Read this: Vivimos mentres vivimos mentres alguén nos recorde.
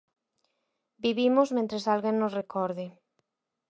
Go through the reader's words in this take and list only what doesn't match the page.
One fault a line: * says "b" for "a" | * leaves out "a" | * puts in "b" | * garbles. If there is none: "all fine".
* leaves out "vivimos mentres"